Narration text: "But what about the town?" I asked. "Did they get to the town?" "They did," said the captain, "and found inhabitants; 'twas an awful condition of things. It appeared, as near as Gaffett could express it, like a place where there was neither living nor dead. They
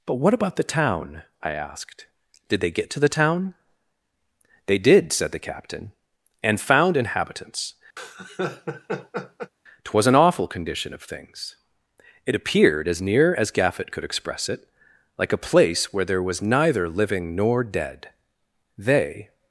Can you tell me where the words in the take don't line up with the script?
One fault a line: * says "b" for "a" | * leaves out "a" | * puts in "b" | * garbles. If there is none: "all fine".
all fine